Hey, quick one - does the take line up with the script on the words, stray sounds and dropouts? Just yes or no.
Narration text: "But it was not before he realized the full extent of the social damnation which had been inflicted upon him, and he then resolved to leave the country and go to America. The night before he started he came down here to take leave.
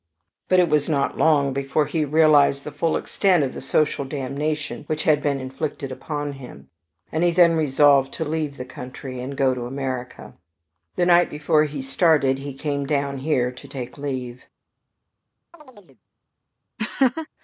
no